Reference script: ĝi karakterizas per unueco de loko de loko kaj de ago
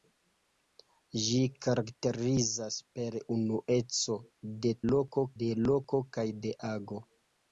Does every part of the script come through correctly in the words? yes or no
yes